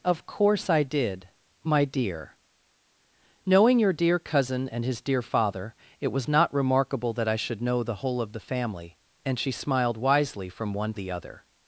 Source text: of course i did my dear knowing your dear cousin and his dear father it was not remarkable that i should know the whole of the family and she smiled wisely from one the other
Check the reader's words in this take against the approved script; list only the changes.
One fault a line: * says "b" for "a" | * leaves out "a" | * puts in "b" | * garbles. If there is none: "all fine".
all fine